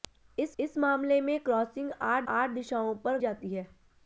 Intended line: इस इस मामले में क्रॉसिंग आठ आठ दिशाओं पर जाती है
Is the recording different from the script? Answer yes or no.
no